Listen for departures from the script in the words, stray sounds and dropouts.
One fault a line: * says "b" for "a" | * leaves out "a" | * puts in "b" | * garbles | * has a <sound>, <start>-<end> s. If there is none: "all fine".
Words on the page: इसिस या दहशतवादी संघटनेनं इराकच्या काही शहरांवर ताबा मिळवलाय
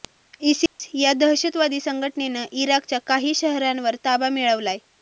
* has a dropout, 0.7-0.8 s